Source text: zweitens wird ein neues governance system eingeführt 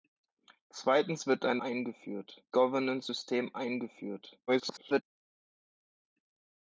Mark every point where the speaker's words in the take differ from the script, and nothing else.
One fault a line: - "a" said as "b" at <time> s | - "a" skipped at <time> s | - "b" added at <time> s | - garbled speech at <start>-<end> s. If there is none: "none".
- "neues" said as "eingeführt" at 1.6 s
- garbled speech at 4.5-5.0 s